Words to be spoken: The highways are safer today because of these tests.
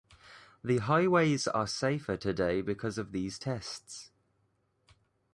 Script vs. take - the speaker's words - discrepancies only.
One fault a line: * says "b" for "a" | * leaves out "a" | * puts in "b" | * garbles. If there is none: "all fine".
all fine